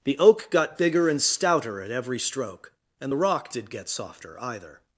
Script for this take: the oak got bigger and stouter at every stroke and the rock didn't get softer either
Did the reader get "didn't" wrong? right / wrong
wrong